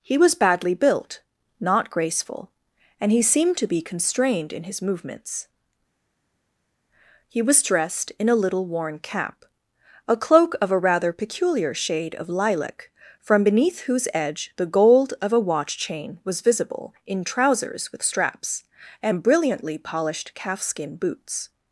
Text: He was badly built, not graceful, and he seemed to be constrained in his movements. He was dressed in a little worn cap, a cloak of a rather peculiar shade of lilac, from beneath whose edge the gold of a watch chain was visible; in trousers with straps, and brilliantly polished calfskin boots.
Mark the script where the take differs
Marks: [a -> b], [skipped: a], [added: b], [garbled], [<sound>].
He was badly built, not graceful, and he seemed to be constrained in his movements. He was dressed in a little worn cap, a cloak of a rather peculiar shade of lilac, from beneath whose edge the gold of a watch chain was visible; in trousers with straps, and brilliantly polished calfskin boots.